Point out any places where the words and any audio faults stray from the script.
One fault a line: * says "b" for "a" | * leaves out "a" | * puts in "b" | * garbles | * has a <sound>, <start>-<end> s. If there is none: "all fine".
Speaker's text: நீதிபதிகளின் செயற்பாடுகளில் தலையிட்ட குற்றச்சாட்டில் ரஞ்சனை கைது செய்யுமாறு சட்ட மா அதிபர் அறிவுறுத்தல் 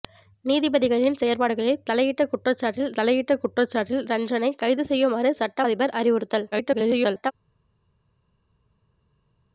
* puts in "தலையிட்ட குற்றச்சாட்டில்"
* leaves out "மா"
* garbles